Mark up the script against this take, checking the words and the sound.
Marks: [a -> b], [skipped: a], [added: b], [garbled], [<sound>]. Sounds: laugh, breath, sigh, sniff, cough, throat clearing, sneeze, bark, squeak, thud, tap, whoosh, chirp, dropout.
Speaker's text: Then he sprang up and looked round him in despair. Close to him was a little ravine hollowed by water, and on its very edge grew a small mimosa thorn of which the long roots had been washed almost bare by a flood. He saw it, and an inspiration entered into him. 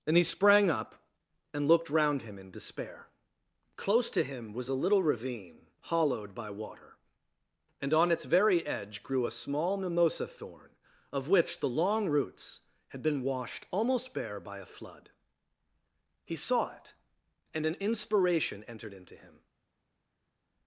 [Then -> And] he sprang up and looked round him in despair. Close to him was a little ravine hollowed by water, and on its very edge grew a small mimosa thorn of which the long roots had been washed almost bare by a flood. He saw it, and an inspiration entered into him.